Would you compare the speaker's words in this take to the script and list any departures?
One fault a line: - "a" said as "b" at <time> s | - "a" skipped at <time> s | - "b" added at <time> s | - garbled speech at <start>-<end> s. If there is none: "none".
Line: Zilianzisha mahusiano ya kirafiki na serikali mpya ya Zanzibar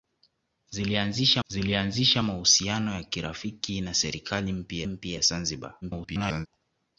- "zilianzisha" added at 1.5 s
- "mpya" added at 4.9 s
- garbled speech at 5.8-6.5 s